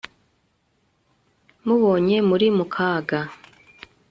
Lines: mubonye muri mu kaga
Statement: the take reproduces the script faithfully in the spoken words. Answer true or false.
true